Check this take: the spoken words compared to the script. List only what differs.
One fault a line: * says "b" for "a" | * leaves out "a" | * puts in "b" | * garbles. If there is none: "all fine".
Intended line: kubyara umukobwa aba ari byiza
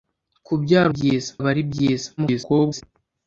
* says "byiza" for "umukobwa"
* garbles